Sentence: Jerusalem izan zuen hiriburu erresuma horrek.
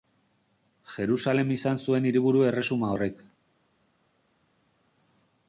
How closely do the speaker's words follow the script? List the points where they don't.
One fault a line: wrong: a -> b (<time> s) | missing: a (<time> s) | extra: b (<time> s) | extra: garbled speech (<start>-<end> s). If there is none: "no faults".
no faults